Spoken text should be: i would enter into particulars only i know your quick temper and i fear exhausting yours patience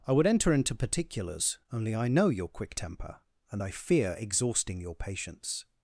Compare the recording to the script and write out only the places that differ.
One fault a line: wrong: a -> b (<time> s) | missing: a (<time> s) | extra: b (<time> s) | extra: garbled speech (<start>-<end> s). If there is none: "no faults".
wrong: yours -> your (4.8 s)